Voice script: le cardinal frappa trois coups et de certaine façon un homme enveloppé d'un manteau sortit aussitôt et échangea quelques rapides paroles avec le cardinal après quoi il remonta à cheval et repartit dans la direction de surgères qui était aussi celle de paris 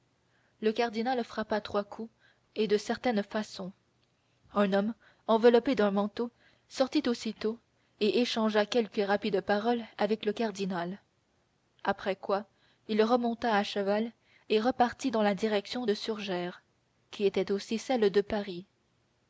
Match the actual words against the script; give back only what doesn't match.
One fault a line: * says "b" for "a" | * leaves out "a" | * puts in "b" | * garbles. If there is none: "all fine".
all fine